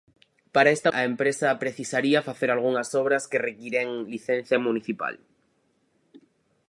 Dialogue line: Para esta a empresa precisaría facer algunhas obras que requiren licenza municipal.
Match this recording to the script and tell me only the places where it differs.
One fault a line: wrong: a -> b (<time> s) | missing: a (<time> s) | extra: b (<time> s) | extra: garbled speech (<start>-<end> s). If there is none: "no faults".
no faults